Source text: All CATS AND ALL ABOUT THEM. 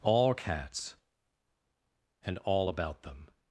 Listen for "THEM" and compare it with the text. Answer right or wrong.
right